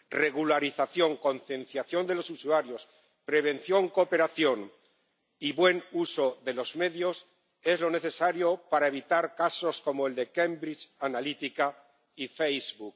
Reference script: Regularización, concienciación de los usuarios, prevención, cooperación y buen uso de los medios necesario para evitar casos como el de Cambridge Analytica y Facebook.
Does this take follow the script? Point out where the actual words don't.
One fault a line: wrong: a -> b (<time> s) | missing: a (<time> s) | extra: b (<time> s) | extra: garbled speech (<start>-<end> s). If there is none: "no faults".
extra: es lo (7.6 s)